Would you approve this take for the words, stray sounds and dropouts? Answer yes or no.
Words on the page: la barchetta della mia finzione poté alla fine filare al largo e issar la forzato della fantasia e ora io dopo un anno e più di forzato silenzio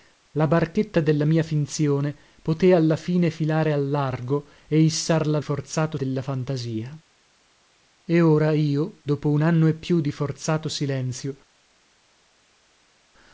yes